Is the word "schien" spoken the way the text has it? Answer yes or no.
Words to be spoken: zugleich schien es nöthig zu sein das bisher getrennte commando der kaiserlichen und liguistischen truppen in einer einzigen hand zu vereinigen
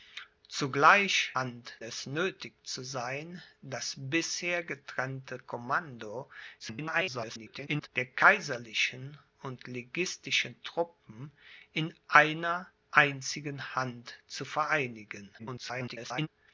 no